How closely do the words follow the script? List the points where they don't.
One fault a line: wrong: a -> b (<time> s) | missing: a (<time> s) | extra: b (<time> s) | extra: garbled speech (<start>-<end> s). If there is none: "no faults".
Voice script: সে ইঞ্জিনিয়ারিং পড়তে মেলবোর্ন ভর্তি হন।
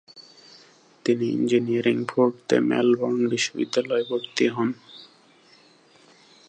wrong: সে -> তিনি (1.1 s)
extra: বিশ্ববিদ্যালয়ে (3.3 s)